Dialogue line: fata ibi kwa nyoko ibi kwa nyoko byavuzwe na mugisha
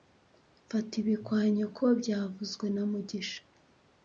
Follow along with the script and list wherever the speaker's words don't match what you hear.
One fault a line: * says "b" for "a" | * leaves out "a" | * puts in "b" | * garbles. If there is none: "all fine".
* leaves out "ibi kwa nyoko"